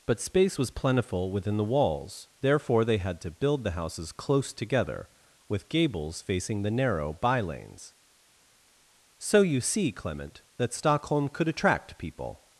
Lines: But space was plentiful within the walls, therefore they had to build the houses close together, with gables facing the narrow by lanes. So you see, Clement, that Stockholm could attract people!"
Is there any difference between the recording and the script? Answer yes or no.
no